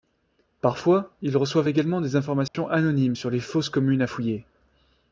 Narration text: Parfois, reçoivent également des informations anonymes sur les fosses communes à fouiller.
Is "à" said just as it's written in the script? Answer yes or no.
yes